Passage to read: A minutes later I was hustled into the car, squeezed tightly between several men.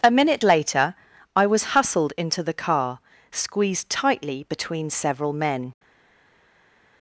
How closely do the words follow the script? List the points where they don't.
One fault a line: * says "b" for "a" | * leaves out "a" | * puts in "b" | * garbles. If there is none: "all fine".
* says "minute" for "minutes"